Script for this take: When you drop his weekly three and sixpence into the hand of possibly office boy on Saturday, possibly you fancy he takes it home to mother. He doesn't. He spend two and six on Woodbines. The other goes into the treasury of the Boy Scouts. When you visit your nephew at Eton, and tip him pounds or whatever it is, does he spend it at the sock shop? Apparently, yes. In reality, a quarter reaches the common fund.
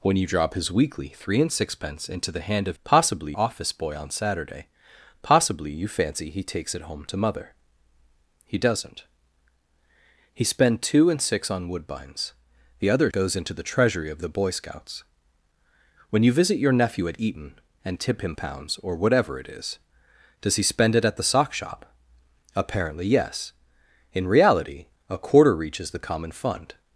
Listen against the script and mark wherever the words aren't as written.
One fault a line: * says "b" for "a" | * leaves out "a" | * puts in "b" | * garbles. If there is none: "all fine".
all fine